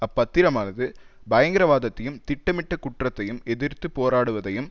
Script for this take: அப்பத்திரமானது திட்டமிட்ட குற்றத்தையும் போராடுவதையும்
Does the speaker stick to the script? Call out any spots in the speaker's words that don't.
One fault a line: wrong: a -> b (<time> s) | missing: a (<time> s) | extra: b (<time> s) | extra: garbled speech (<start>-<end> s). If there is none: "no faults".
extra: பயங்கரவாதத்தையும் (1.3 s)
extra: எதிர்த்து (3.5 s)